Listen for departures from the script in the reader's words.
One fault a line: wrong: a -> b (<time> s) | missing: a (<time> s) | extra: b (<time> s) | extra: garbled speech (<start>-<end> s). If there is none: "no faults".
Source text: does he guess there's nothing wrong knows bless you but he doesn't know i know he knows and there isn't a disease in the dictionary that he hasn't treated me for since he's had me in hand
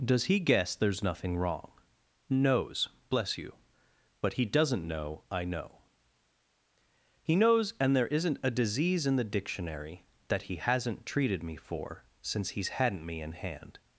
wrong: had -> hadn't (12.7 s)